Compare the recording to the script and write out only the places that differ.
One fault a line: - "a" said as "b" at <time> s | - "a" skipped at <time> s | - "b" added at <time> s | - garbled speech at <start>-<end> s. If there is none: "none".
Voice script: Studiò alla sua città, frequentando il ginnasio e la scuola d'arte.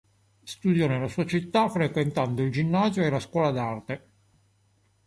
- "alla" said as "nella" at 0.9 s